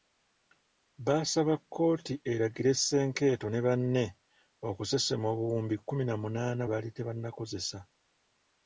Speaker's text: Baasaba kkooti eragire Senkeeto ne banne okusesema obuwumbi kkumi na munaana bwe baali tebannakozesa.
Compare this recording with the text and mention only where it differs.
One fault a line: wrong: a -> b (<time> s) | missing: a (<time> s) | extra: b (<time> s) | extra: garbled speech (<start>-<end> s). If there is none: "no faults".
missing: bwe (6.6 s)